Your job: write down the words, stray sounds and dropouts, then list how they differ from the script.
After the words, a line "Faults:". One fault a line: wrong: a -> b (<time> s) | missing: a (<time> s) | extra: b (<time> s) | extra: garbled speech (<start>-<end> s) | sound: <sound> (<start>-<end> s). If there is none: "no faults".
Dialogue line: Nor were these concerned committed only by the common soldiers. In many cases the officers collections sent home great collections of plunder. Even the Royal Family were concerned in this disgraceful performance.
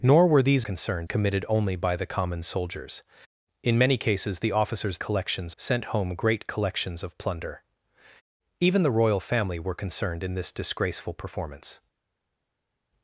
Nor were these concerned committed only by the common soldiers. In many cases the officers collections sent home great collections of plunder. Even the Royal Family were concerned in this disgraceful performance.
Faults:
no faults